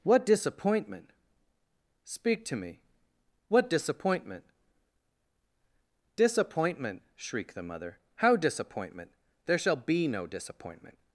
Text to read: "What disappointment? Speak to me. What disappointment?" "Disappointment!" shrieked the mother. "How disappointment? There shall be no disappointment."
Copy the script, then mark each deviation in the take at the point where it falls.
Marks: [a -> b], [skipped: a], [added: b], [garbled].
"What disappointment? Speak to me. What disappointment?" "Disappointment!" shrieked the mother. "How disappointment? There shall be no disappointment."